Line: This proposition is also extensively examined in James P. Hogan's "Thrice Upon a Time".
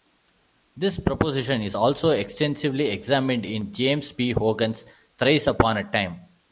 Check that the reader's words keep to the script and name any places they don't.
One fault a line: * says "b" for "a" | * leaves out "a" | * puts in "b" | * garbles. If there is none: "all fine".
all fine